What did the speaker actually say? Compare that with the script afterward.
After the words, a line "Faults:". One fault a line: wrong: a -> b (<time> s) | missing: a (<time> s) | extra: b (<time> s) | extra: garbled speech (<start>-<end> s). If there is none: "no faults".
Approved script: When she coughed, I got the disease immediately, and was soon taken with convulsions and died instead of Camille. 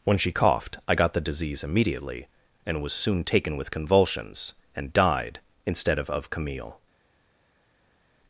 When she coughed, I got the disease immediately, and was soon taken with convulsions and died instead of of Camille.
Faults:
extra: of (6.1 s)